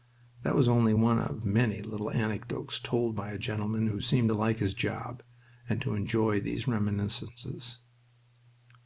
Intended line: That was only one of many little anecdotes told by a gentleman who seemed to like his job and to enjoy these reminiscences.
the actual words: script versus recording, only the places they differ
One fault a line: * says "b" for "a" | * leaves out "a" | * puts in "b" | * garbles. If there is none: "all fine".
all fine